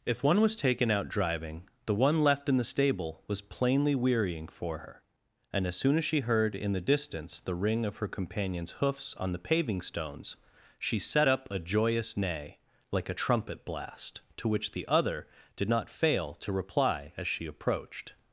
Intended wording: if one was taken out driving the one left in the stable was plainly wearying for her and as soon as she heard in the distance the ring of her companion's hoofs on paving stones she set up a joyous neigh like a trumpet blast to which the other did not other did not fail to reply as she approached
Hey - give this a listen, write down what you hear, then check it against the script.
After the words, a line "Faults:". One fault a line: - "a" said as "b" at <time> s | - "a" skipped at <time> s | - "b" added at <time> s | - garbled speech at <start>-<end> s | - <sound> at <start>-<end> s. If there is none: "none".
if one was taken out driving the one left in the stable was plainly wearying for her and as soon as she heard in the distance the ring of her companion's hoofs on the paving stones she set up a joyous neigh like a trumpet blast to which the other did not fail to reply as she approached
Faults:
- "the" added at 9.3 s
- "other did not" skipped at 15.9 s